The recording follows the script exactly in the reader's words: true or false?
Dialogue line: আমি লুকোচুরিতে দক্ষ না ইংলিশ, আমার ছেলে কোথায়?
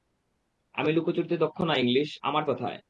false